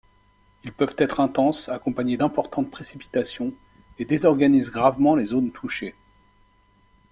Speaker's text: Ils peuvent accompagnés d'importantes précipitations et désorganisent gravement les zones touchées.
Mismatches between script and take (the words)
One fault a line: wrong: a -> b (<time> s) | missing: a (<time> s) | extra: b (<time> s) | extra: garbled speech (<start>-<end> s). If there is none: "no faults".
extra: être intenses (1.0 s)